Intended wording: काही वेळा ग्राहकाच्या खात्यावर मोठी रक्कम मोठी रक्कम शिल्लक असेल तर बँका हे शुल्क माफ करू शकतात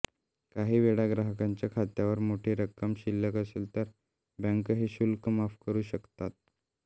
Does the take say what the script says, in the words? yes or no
no